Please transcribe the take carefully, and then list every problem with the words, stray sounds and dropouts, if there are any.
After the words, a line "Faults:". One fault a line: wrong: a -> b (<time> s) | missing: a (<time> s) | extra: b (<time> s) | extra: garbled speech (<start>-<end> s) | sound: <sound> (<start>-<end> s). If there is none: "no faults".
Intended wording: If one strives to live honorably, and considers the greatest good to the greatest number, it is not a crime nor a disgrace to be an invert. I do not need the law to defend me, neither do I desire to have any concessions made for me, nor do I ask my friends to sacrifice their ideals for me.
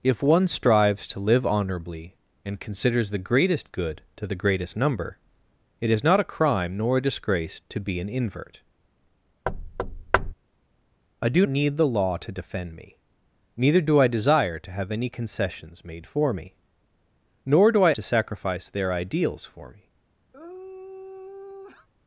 If one strives to live honorably, and considers the greatest good to the greatest number, it is not a crime nor a disgrace to be an invert. I do need the law to defend me, neither do I desire to have any concessions made for me, nor do I to sacrifice their ideals for me.
Faults:
sound: thud (9.5-10.3 s)
missing: not (11.5 s)
missing: ask my friends (17.9 s)
sound: sigh (20.3-21.9 s)